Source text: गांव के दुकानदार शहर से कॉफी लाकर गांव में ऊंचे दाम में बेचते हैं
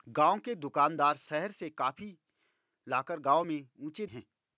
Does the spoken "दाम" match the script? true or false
false